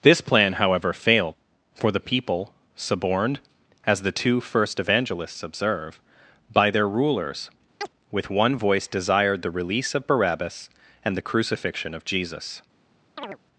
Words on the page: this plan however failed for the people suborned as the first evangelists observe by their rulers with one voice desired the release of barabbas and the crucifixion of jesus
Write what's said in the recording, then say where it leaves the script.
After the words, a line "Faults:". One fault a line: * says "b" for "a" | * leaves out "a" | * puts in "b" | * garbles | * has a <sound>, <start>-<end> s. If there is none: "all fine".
this plan however failed for the people suborned as the two first evangelists observe by their rulers with one voice desired the release of barabbas and the crucifixion of jesus
Faults:
* puts in "two"
* has a chirp, 7.8-7.9 s
* has a chirp, 13.2-13.4 s